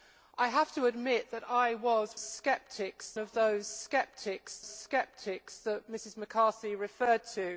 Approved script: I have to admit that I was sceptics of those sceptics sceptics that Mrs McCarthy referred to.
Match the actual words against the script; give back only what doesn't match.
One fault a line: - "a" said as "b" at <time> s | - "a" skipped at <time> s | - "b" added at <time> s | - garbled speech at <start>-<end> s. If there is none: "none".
none